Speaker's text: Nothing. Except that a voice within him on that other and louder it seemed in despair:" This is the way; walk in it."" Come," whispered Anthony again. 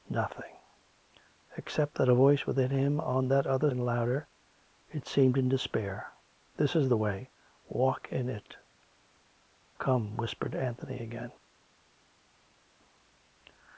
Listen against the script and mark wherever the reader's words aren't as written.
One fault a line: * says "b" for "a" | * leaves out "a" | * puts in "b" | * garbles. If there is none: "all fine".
all fine